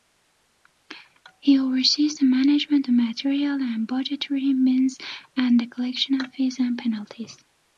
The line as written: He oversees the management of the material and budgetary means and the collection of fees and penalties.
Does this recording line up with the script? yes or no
no